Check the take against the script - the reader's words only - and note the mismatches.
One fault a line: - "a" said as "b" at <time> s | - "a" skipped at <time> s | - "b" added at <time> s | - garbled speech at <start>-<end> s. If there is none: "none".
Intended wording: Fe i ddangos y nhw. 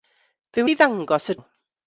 none